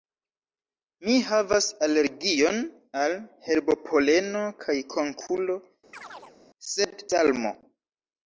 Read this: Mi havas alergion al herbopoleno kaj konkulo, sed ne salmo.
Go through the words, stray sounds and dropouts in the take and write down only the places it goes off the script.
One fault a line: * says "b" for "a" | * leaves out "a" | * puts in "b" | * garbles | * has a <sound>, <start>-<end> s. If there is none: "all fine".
* has a chirp, 5.9-6.4 s
* leaves out "ne"